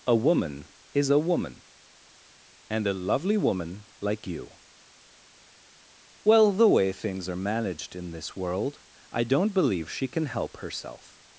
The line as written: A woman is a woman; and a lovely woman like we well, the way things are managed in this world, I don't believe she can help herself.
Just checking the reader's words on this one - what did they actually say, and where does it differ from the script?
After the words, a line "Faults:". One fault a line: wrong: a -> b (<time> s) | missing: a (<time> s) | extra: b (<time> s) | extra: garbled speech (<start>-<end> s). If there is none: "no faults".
A woman is a woman; and a lovely woman like you well, the way things are managed in this world, I don't believe she can help herself.
Faults:
wrong: we -> you (4.3 s)